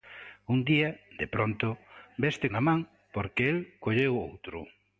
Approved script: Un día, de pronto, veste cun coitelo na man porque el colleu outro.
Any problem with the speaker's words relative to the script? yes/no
yes